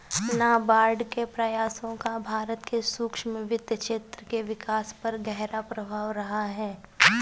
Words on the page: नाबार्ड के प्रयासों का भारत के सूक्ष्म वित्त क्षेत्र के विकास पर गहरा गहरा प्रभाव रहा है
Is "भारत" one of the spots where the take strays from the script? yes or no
no